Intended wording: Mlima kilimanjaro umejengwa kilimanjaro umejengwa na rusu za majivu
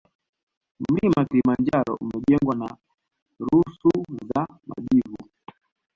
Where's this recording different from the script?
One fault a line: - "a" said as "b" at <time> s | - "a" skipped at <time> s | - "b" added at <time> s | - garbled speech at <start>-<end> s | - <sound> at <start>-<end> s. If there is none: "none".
- "kilimanjaro umejengwa" skipped at 2.5 s